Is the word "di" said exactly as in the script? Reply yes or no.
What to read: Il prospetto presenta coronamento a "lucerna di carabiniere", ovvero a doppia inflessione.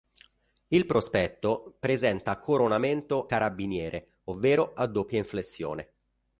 no